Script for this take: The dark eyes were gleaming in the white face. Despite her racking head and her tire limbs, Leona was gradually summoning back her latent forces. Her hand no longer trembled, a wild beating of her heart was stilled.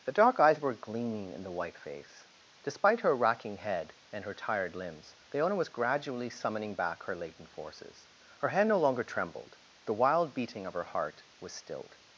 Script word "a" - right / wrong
wrong